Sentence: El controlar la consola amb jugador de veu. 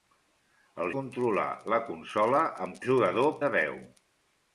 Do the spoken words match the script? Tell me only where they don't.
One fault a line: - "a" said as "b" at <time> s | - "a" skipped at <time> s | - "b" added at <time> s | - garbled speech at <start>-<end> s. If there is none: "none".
none